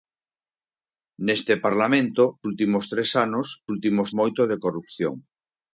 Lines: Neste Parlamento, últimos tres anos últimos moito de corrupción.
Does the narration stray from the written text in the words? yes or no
no